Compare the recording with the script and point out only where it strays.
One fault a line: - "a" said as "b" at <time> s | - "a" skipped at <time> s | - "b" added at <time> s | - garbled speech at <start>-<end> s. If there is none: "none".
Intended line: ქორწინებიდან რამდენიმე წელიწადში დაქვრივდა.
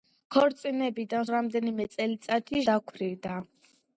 none